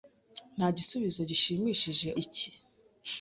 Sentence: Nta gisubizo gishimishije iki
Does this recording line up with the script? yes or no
yes